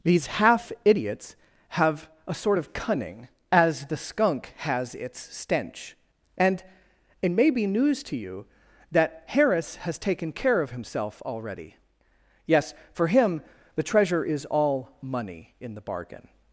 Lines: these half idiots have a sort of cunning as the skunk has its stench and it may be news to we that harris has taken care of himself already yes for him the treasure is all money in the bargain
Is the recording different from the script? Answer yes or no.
yes